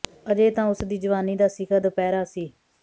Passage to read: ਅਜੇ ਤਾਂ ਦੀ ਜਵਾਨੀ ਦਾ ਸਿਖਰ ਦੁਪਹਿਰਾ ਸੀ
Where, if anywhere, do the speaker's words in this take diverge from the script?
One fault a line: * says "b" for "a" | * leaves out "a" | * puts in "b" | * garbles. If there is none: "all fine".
* puts in "ਉਸ"